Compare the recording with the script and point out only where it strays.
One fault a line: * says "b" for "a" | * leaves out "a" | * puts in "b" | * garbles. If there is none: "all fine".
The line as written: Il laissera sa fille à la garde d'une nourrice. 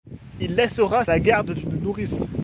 * leaves out "sa fille à"